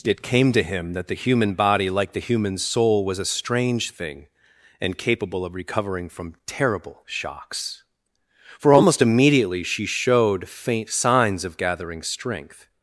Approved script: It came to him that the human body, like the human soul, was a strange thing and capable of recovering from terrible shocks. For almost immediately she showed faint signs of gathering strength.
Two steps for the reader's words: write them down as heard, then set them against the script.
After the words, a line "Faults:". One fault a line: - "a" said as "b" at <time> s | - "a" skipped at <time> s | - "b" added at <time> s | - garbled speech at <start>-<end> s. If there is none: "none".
It came to him that the human body, like the human soul, was a strange thing and capable of recovering from terrible shocks. For almost immediately she showed faint signs of gathering strength.
Faults:
none